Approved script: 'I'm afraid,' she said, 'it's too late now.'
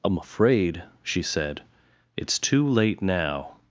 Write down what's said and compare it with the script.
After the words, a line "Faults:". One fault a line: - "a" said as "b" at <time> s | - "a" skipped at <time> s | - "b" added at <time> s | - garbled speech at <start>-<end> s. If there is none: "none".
'I'm afraid,' she said, 'it's too late now.'
Faults:
none